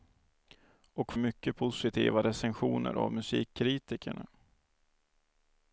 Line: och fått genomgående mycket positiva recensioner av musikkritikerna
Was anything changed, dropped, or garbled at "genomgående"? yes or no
yes